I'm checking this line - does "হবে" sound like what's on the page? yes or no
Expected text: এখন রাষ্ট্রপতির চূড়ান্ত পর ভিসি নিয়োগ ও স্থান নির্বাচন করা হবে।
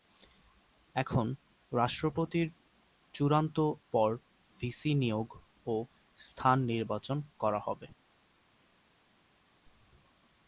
yes